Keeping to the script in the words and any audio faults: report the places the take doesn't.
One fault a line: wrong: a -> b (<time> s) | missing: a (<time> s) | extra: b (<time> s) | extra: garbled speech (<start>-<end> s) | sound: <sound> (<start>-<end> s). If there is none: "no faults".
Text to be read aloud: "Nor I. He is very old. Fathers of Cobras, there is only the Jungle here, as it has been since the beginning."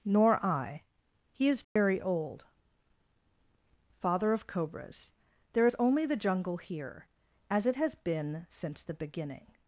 sound: dropout (1.6-1.8 s)
wrong: Fathers -> Father (4.0 s)